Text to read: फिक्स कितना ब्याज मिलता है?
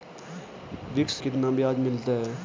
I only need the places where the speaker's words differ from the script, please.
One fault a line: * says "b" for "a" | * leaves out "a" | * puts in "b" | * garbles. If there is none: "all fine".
all fine